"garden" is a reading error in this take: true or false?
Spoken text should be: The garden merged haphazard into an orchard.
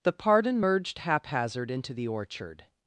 true